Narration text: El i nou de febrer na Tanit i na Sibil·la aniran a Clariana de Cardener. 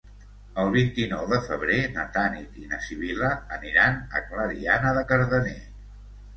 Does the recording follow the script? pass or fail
fail